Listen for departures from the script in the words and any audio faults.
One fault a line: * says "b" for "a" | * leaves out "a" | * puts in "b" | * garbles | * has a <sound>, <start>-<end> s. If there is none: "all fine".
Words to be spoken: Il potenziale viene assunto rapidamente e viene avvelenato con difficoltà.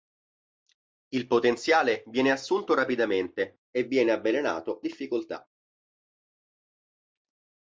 * leaves out "con"